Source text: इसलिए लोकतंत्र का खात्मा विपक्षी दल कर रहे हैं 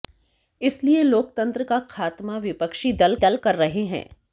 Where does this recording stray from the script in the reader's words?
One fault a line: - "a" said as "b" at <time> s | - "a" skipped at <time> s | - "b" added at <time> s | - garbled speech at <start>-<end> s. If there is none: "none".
- "दल" added at 3.2 s